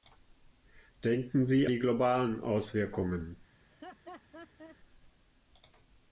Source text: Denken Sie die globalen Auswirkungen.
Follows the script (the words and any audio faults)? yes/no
no